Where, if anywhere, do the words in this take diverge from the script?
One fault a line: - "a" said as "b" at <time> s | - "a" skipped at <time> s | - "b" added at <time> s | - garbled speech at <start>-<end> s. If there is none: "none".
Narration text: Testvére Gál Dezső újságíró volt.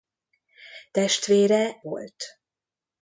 - "Gál Dezső újságíró" skipped at 1.8 s